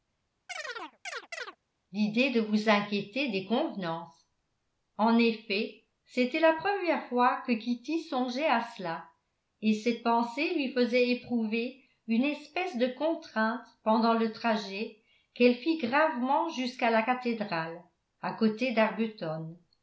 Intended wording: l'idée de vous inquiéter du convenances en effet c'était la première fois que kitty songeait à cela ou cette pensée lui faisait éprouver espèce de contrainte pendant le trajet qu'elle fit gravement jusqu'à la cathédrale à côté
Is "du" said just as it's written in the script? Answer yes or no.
no